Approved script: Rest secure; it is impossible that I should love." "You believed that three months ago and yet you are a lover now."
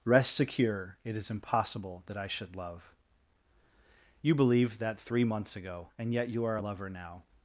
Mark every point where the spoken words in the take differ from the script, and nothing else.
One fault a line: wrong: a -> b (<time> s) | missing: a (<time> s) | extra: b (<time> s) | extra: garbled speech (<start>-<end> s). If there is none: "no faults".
no faults